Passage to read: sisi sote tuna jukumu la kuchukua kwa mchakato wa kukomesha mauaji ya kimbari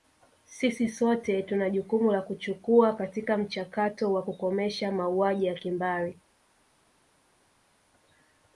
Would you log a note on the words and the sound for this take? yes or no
yes